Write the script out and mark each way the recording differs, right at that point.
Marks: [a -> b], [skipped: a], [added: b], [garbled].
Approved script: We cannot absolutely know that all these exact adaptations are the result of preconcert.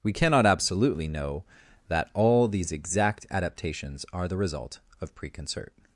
We cannot absolutely know that all these exact adaptations are the result of preconcert.